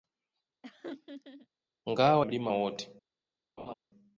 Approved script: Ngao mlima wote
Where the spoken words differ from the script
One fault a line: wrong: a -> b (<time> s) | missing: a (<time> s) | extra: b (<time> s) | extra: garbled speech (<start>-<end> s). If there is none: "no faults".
no faults